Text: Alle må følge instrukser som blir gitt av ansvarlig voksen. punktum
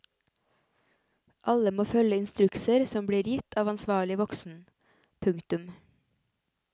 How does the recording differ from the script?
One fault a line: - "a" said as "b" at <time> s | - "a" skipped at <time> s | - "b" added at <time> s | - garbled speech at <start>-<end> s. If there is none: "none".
none